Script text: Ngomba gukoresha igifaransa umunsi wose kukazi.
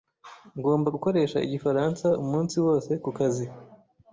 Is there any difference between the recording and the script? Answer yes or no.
no